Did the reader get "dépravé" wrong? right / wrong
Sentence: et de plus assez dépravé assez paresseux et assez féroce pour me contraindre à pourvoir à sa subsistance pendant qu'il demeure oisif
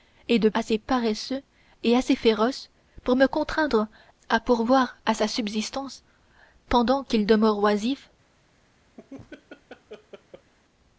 wrong